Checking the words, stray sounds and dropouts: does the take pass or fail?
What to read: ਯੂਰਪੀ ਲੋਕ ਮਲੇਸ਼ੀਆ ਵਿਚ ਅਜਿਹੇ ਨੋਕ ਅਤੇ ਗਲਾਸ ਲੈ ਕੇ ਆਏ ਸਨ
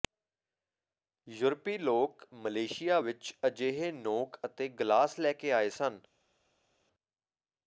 pass